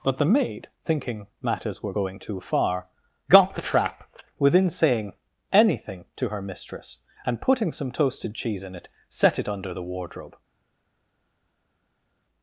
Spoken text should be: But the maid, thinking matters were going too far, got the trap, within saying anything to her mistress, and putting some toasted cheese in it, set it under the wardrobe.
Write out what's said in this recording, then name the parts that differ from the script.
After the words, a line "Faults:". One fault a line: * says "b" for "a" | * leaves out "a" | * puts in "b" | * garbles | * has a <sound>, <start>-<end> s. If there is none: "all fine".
But the maid, thinking matters were going too far, got the trap, within saying anything to her mistress, and putting some toasted cheese in it, set it under the wardrobe.
Faults:
all fine